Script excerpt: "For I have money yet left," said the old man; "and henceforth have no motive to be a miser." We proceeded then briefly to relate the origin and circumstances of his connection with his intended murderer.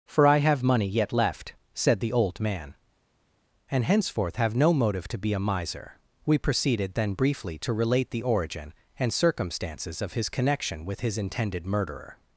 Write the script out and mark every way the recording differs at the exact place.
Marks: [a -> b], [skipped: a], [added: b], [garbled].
"For I have money yet left," said the old man; "and henceforth have no motive to be a miser." We proceeded then briefly to relate the origin and circumstances of his connection with his intended murderer.